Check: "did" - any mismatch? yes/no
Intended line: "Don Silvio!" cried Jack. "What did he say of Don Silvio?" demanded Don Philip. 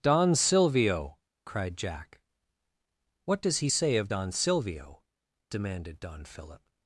yes